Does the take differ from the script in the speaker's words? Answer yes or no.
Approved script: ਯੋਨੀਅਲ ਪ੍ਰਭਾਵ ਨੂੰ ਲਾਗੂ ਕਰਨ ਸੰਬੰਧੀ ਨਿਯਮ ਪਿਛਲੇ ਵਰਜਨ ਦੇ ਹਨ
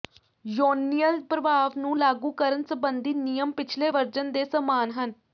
yes